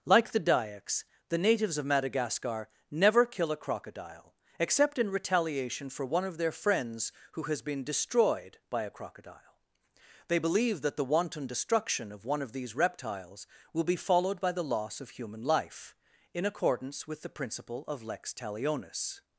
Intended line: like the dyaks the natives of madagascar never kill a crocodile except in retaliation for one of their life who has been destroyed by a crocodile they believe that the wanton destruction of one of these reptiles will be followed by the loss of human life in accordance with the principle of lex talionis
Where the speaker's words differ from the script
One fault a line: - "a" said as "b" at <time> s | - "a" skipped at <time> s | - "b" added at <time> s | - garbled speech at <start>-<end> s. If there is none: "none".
- "life" said as "friends" at 6.5 s